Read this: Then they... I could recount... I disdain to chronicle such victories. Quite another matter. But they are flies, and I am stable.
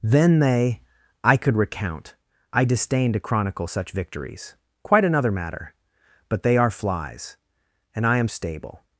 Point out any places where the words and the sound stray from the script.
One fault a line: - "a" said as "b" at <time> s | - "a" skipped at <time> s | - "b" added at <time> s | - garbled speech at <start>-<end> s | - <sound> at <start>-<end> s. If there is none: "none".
none